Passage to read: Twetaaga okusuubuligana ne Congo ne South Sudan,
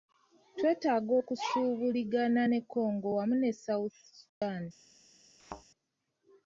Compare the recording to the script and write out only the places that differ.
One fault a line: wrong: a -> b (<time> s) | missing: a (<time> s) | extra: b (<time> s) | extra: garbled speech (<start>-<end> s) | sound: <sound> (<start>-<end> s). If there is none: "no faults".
extra: wamu (3.2 s)
sound: dropout (4.3-4.4 s)
sound: thud (5.4-5.6 s)